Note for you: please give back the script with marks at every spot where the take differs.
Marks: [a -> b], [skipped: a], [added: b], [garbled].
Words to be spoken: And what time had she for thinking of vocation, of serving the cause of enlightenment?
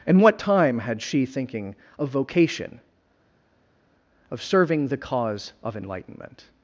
And what time had she [skipped: for] thinking of vocation, of serving the cause of enlightenment?